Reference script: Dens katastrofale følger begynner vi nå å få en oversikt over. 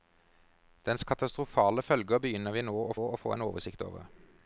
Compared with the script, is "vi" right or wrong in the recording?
right